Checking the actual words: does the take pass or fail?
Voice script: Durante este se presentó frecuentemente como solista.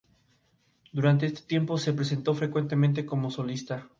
fail